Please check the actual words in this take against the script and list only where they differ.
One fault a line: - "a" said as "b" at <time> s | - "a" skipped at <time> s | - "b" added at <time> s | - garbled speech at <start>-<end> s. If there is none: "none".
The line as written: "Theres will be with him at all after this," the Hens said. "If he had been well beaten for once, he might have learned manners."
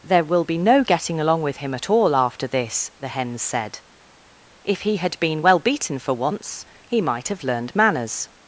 - "Theres" said as "There" at 0.0 s
- "no getting along" added at 0.6 s